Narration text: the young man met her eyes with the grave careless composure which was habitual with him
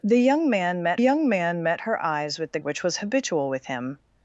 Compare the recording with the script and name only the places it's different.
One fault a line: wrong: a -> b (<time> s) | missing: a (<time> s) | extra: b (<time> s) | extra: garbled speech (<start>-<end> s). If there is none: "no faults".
extra: young man met (0.9 s)
missing: grave careless composure (2.6 s)